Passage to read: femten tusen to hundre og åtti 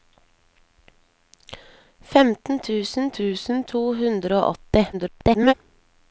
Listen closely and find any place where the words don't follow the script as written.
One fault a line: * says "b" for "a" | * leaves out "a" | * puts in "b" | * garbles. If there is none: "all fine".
* puts in "tusen"
* garbles